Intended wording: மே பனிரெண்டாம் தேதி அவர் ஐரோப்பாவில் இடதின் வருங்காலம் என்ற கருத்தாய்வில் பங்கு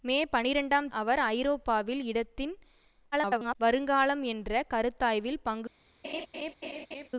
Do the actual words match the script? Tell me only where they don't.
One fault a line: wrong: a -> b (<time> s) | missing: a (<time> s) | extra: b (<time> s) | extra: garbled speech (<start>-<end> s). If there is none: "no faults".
missing: தேதி (0.9 s)
extra: garbled speech (3.1-3.5 s)